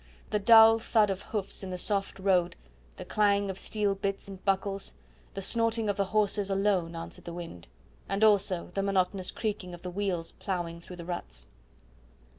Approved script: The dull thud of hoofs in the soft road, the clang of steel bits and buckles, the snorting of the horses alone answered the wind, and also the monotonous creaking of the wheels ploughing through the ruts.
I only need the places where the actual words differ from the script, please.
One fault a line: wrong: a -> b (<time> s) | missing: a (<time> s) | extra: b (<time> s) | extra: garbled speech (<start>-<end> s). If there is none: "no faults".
no faults